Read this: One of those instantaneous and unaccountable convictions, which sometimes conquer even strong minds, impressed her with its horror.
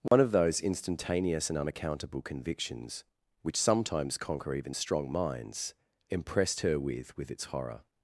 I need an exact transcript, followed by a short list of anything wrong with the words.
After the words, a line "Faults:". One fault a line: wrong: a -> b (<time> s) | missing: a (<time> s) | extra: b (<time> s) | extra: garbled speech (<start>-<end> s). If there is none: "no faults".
One of those instantaneous and unaccountable convictions, which sometimes conquer even strong minds, impressed her with with its horror.
Faults:
extra: with (7.2 s)